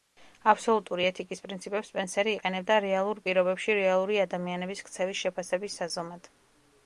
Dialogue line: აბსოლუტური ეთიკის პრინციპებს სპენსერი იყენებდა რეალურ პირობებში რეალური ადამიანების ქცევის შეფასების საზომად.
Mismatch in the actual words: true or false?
false